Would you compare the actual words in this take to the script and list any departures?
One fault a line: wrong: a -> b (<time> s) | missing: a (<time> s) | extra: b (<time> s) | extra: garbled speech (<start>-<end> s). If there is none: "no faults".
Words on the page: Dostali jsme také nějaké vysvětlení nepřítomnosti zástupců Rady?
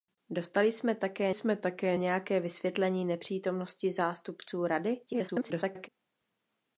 extra: jsme také (1.3 s)
extra: garbled speech (5.0-5.9 s)